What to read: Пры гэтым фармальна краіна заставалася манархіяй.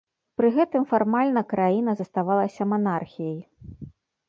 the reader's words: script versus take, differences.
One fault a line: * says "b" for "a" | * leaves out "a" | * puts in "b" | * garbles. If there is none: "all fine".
all fine